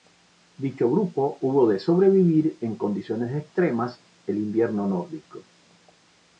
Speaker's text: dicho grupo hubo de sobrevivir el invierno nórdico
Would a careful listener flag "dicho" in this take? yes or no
no